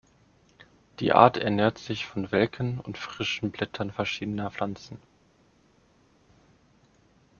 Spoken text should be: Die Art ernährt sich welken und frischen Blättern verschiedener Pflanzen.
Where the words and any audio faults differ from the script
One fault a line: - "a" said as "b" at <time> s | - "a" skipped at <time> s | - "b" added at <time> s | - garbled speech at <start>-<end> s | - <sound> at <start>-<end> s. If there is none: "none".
- "von" added at 2.1 s